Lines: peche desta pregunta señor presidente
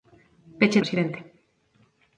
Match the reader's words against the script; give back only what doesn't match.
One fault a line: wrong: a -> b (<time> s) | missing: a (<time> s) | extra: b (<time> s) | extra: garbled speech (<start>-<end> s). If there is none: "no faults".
missing: desta pregunta señor (0.8 s)